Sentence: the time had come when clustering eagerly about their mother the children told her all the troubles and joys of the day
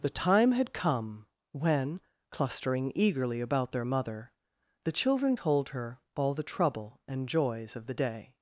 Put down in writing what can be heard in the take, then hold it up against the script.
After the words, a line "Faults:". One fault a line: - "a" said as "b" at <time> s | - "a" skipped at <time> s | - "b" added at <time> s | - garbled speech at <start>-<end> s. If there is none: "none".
the time had come when clustering eagerly about their mother the children told her all the trouble and joys of the day
Faults:
- "troubles" said as "trouble" at 6.4 s